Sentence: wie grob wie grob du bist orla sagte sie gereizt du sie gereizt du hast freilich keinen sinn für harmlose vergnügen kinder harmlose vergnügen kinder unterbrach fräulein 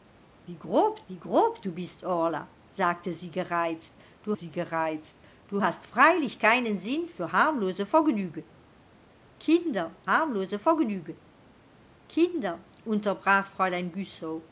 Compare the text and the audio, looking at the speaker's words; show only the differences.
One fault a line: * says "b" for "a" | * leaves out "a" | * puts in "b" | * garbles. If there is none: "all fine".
all fine